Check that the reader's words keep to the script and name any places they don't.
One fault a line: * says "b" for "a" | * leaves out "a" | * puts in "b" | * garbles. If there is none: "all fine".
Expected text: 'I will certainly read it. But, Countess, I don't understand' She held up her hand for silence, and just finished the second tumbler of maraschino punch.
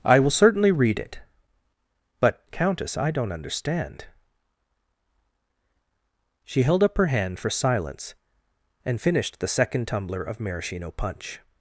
* leaves out "just"